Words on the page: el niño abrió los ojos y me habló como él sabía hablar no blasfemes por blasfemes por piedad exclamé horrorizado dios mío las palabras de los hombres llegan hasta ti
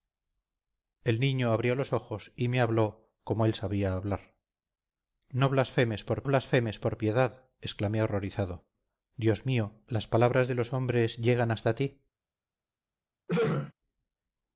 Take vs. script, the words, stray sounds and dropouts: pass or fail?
fail